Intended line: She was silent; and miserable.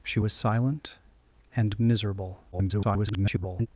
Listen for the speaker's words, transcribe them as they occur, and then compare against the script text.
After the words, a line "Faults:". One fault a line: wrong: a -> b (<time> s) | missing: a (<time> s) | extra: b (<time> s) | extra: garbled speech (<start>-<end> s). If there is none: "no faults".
She was silent; and miserable. [garbled]
Faults:
extra: garbled speech (2.5-3.7 s)